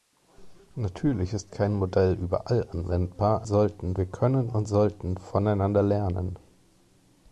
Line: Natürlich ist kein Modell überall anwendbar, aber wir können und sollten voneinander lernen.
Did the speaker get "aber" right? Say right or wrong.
wrong